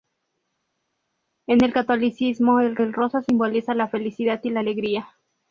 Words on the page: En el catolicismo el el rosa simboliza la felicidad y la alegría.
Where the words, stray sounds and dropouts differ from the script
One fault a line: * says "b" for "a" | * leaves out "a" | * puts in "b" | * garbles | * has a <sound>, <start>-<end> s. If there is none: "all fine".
all fine